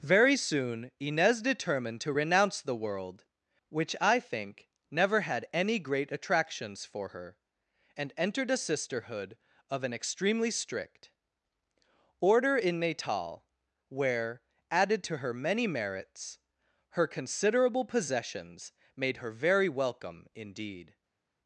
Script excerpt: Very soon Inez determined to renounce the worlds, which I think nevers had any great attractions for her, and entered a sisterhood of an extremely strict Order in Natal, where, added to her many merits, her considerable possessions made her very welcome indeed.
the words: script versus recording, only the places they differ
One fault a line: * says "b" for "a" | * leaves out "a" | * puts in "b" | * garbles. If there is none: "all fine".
* says "world" for "worlds"
* says "never" for "nevers"